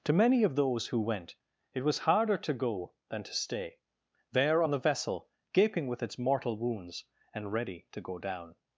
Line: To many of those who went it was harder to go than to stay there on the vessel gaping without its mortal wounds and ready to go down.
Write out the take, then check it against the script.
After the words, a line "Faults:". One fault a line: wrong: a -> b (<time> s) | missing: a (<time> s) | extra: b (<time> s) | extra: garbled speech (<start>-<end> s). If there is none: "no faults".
To many of those who went it was harder to go than to stay there on the vessel gaping with its mortal wounds and ready to go down.
Faults:
wrong: without -> with (5.9 s)